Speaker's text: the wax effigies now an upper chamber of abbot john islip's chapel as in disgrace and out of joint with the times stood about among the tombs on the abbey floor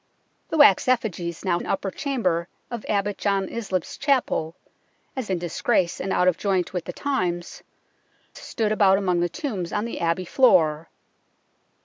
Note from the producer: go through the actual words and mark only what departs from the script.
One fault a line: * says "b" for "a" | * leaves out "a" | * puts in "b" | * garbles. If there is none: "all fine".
all fine